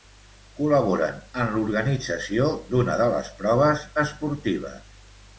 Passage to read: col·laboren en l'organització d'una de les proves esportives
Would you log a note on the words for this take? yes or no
no